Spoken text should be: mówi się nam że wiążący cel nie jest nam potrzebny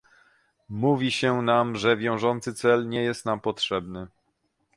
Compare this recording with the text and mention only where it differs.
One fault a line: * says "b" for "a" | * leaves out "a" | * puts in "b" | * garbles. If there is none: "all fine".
all fine